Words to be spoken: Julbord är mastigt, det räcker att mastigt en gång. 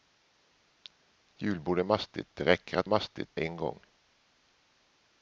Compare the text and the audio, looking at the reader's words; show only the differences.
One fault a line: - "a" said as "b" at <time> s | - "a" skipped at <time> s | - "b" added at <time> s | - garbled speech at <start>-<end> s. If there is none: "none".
none